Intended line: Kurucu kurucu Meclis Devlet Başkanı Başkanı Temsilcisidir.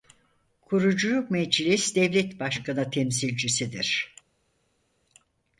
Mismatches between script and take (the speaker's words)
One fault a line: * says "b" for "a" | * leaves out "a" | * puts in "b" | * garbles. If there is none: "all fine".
* leaves out "kurucu"
* leaves out "Başkanı"